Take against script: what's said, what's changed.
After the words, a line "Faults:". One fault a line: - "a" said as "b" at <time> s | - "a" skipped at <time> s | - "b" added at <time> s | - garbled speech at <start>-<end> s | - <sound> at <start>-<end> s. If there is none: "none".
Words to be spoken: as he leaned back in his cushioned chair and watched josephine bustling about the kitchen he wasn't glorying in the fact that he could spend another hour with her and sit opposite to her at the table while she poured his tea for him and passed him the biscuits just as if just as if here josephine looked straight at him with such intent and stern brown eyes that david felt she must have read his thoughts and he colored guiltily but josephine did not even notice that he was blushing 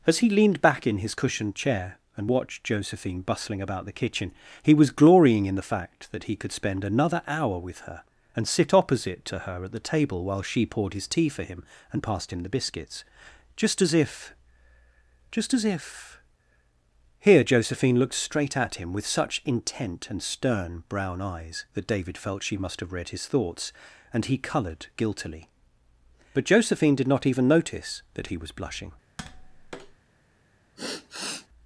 as he leaned back in his cushioned chair and watched josephine bustling about the kitchen he was glorying in the fact that he could spend another hour with her and sit opposite to her at the table while she poured his tea for him and passed him the biscuits just as if just as if here josephine looked straight at him with such intent and stern brown eyes that david felt she must have read his thoughts and he colored guiltily but josephine did not even notice that he was blushing
Faults:
- "wasn't" said as "was" at 4.7 s
- tap at 29.2-30.0 s
- sigh at 30.8-31.5 s